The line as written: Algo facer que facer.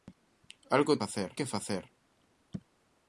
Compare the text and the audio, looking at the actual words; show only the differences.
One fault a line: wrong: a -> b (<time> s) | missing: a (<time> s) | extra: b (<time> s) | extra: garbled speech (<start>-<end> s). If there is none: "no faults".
no faults